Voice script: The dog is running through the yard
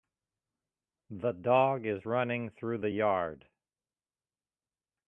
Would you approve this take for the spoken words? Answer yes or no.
yes